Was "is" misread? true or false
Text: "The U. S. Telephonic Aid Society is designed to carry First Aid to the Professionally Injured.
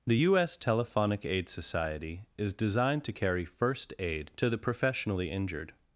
false